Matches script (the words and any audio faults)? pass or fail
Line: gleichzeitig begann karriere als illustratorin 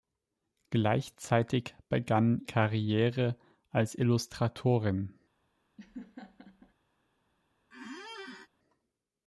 fail